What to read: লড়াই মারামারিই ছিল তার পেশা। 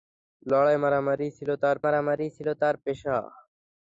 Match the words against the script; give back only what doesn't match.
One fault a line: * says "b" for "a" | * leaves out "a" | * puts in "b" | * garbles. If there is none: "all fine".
* puts in "মারামারিই ছিল তার"